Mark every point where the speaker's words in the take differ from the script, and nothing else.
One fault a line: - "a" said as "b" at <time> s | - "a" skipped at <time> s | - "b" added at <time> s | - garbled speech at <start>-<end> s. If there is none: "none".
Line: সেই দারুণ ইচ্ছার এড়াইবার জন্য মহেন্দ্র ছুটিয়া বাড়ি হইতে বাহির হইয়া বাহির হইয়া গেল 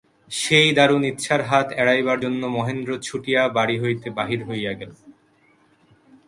- "হাত" added at 1.4 s
- "বাহির হইয়া" skipped at 4.7 s